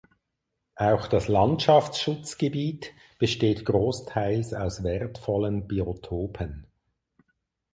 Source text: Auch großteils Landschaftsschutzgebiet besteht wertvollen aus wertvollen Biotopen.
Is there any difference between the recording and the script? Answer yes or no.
yes